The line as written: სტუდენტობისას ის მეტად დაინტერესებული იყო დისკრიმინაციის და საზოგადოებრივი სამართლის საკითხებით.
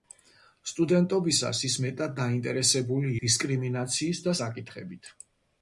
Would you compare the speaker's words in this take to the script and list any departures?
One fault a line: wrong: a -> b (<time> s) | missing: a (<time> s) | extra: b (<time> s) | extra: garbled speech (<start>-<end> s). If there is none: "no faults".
missing: იყო (3.1 s)
missing: საზოგადოებრივი სამართლის (4.4 s)